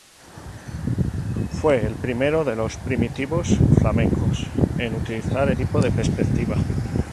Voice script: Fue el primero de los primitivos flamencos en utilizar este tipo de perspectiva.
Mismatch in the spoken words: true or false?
true